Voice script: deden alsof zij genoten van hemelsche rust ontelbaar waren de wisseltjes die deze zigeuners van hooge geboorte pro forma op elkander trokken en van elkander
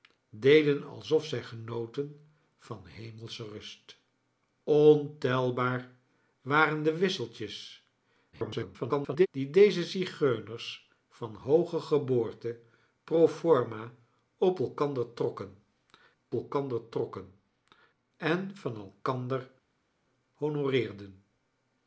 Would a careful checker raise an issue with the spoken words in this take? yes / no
yes